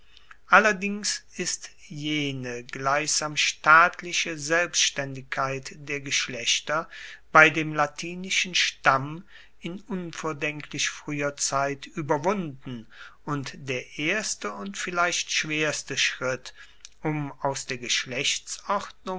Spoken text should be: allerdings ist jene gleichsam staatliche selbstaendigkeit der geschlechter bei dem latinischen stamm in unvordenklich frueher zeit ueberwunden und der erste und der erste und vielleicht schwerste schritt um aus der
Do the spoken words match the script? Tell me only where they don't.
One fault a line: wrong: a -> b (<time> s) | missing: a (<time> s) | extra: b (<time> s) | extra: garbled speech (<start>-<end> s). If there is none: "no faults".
missing: der erste und (14.8 s)